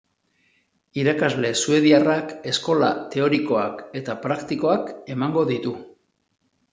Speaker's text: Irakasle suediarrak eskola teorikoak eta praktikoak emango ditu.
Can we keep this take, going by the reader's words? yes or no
yes